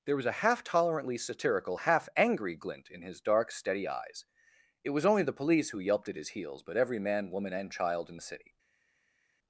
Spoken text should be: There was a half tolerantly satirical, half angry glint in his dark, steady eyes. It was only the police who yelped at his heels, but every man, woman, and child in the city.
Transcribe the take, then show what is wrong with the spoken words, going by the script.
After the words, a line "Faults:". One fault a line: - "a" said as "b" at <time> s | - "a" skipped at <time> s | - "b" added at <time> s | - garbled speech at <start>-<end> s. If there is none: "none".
There was a half tolerantly satirical, half angry glint in his dark, steady eyes. It was only the police who yelped at his heels, but every man, woman, and child in the city.
Faults:
none